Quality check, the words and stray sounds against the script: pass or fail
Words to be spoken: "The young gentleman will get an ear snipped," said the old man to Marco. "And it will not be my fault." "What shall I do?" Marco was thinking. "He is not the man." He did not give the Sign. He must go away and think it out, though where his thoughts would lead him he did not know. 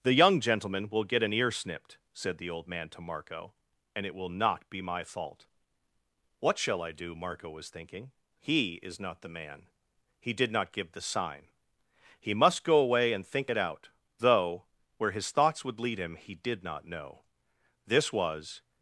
fail